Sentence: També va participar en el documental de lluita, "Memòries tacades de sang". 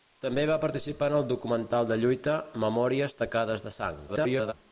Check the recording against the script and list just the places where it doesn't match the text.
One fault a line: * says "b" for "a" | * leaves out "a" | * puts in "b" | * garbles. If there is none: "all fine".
* garbles